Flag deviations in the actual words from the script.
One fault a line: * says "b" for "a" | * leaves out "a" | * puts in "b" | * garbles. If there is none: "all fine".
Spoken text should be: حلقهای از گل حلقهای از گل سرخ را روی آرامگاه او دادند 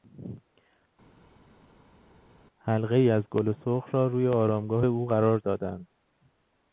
* leaves out "حلقهای از گل"
* puts in "قرار"